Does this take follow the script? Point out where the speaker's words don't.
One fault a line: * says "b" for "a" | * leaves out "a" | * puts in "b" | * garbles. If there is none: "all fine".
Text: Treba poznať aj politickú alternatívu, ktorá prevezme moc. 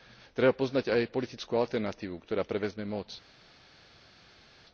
all fine